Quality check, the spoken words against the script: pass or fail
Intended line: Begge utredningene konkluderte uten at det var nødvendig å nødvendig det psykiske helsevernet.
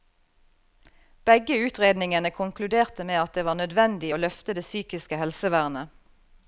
fail